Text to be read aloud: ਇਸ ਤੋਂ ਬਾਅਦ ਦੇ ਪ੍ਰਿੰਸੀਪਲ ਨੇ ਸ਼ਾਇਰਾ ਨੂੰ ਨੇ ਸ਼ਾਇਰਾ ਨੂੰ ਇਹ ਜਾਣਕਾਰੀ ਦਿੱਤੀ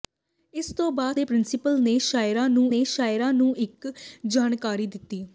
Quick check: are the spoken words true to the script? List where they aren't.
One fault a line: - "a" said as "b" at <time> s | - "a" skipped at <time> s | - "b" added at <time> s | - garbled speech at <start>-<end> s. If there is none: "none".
none